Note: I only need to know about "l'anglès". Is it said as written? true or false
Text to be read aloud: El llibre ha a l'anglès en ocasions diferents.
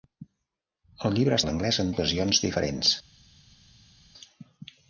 true